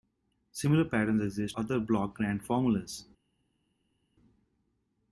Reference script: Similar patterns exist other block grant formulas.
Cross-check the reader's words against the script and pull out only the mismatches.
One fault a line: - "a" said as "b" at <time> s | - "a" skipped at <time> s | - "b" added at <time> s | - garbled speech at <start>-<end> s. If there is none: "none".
none